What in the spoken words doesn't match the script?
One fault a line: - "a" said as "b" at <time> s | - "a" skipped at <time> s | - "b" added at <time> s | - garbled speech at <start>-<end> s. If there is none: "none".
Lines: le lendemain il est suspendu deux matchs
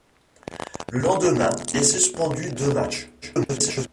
- "il" skipped at 1.5 s
- garbled speech at 3.2-3.9 s